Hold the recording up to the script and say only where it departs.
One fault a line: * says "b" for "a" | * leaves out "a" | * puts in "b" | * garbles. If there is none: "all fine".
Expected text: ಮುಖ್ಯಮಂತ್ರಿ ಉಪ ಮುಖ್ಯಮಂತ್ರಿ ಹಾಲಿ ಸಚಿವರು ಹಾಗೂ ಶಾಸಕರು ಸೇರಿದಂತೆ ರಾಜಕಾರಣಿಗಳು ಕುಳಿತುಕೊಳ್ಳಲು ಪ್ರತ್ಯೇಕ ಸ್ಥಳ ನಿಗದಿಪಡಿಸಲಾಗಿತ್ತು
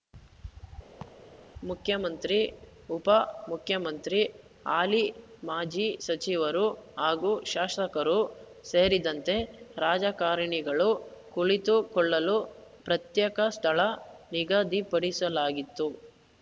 * puts in "ಮಾಜಿ"